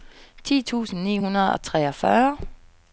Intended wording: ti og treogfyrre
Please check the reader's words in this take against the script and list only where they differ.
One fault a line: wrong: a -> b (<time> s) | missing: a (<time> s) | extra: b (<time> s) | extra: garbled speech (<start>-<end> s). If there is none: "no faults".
extra: tusind ni hundrede (0.6 s)